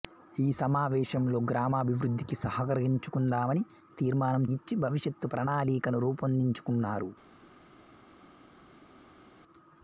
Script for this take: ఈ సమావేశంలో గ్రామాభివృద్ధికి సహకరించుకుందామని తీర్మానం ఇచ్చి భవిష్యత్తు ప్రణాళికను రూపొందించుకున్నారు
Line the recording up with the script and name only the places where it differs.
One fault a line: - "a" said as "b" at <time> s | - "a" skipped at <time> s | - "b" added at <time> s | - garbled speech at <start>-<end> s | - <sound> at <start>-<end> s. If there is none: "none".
none